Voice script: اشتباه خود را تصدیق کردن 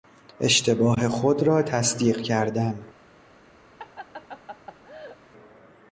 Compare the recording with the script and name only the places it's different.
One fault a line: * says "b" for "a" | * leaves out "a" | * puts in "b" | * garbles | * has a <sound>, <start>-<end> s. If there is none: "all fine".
* has a laugh, 3.8-5.2 s